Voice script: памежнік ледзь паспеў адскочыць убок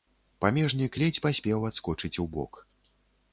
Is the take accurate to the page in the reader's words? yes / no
yes